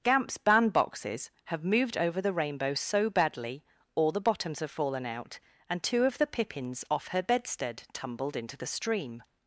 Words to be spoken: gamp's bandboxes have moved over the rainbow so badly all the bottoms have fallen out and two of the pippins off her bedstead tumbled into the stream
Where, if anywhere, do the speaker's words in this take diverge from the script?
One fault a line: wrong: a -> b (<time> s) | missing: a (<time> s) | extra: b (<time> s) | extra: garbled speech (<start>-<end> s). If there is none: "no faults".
no faults